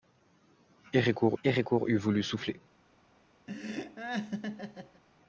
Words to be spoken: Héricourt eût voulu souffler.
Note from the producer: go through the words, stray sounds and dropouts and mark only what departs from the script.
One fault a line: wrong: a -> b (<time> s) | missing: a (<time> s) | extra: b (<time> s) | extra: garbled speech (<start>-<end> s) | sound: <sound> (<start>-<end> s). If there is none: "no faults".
extra: héricourt (1.4 s)
sound: laugh (3.5-5.0 s)